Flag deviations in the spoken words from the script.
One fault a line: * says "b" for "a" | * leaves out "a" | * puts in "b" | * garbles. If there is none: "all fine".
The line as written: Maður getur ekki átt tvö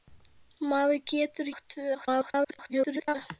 * leaves out "ekki"
* garbles